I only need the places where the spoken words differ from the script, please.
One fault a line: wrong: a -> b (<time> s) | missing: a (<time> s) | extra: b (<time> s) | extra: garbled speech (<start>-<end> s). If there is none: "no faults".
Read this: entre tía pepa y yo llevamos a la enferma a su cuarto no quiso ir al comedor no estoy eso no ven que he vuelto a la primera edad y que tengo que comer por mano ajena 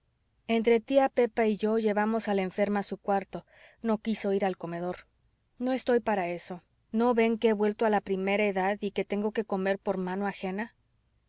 extra: para (6.0 s)